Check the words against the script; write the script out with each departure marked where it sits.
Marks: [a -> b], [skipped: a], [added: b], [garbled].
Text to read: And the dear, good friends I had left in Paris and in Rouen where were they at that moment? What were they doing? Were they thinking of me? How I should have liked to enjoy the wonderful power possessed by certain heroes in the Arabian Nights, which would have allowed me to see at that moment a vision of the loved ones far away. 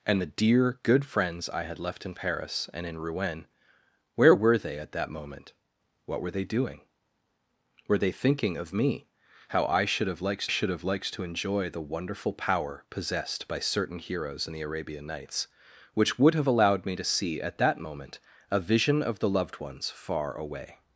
And the dear, good friends I had left in Paris and in Rouen where were they at that moment? What were they doing? Were they thinking of me? How I should have liked [added: should have liked] to enjoy the wonderful power possessed by certain heroes in the Arabian Nights, which would have allowed me to see at that moment a vision of the loved ones far away.